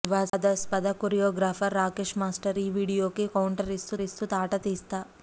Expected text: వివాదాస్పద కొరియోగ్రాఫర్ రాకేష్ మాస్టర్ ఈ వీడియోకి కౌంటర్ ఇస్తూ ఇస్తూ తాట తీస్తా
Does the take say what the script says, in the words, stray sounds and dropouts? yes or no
yes